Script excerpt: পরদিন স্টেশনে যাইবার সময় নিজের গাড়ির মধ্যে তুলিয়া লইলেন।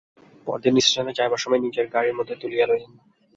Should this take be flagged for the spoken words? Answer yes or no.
no